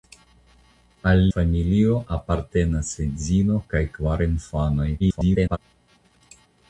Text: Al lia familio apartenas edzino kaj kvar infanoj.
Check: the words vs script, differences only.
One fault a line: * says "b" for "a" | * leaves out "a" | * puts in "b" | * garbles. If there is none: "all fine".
* leaves out "lia"
* garbles